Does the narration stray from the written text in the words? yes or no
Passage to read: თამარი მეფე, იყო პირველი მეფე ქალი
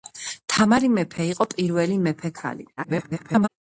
yes